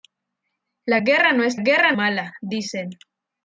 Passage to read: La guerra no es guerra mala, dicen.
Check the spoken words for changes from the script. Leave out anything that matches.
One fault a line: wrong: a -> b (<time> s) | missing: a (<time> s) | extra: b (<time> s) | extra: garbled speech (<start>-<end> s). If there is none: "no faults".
no faults